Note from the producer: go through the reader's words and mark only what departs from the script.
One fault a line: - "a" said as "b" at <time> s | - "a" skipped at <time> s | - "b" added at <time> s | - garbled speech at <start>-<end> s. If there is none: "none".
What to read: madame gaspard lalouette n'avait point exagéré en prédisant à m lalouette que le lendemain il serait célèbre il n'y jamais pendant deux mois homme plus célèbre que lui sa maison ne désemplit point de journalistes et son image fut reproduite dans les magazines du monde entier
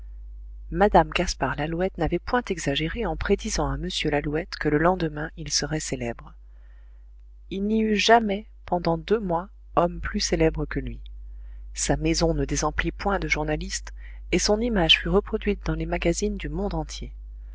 - "eut" added at 7.8 s